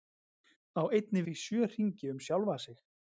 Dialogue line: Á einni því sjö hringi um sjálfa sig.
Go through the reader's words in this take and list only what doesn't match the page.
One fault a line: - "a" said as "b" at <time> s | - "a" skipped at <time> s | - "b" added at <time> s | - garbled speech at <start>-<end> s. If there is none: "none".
none